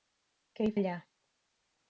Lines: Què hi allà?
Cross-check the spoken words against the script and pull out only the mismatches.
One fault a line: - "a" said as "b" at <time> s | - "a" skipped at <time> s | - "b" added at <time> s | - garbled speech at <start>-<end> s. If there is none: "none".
none